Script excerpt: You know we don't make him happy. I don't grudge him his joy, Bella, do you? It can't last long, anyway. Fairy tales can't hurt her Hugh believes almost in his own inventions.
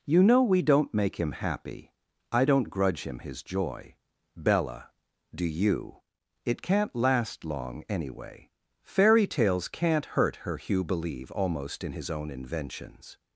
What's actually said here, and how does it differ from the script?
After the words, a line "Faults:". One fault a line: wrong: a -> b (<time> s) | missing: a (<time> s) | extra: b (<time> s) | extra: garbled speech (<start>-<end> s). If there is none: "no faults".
You know we don't make him happy. I don't grudge him his joy, Bella, do you? It can't last long, anyway. Fairy tales can't hurt her Hugh believe almost in his own inventions.
Faults:
wrong: believes -> believe (10.8 s)